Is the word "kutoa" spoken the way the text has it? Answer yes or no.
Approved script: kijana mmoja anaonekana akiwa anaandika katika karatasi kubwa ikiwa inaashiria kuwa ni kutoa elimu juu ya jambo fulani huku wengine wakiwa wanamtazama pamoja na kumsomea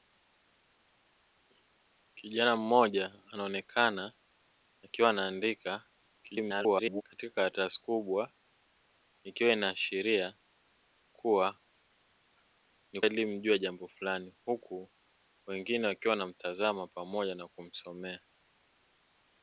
no